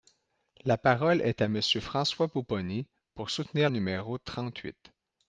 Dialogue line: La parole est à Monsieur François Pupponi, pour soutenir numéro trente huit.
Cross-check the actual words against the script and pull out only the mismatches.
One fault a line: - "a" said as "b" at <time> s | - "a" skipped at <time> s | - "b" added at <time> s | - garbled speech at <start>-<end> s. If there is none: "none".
none